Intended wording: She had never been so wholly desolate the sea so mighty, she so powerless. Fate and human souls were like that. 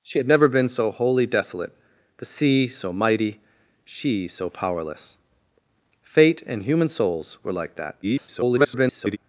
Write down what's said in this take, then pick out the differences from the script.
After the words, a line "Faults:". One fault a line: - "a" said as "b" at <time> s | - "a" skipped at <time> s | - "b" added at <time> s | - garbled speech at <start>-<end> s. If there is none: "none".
She had never been so wholly desolate the sea so mighty, she so powerless. Fate and human souls were like that. [garbled]
Faults:
- garbled speech at 8.0-9.2 s